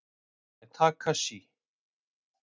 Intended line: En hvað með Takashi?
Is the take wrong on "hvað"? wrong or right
wrong